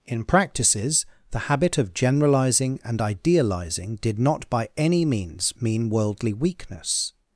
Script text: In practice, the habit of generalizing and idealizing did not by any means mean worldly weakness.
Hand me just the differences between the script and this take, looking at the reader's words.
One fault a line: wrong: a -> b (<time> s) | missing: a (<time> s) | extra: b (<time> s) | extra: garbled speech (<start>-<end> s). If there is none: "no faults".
wrong: practice -> practices (0.2 s)